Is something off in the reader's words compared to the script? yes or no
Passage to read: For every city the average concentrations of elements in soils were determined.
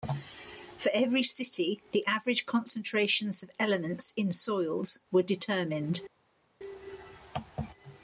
no